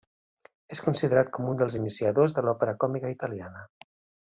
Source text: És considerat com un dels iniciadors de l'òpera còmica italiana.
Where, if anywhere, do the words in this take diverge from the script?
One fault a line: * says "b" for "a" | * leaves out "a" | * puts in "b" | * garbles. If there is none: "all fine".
all fine